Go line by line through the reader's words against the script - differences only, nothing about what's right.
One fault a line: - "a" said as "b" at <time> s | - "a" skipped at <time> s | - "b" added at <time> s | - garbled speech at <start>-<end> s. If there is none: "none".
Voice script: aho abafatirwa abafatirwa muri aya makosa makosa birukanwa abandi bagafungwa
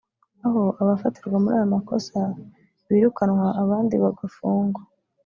- "abafatirwa" skipped at 1.4 s
- "makosa" skipped at 2.2 s